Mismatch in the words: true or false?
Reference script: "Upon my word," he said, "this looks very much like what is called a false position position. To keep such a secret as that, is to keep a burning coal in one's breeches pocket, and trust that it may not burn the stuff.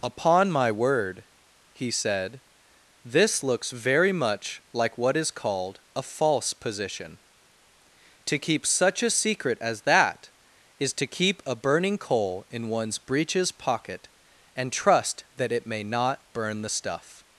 true